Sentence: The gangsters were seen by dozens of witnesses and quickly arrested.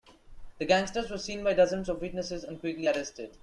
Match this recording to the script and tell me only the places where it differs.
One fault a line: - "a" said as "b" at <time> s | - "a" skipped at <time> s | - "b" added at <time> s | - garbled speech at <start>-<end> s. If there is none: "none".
none